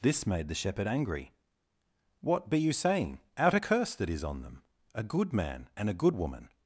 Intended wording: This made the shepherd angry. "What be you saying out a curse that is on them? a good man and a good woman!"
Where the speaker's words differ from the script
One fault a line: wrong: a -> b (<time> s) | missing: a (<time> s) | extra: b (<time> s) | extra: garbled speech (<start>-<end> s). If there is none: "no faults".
no faults